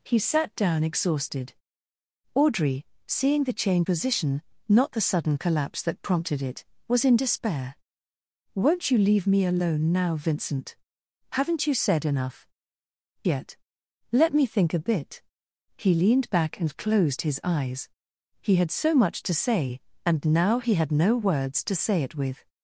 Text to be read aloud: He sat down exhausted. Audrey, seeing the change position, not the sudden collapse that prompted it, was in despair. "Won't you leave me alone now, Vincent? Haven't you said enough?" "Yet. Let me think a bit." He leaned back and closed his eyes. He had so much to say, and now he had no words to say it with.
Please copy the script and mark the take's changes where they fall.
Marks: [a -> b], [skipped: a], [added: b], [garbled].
He sat down exhausted. Audrey, seeing the change position, not the sudden collapse that prompted it, was in despair. "Won't you leave me alone now, Vincent? Haven't you said enough?" "Yet. Let me think a bit." He leaned back and closed his eyes. He had so much to say, and now he had no words to say it with.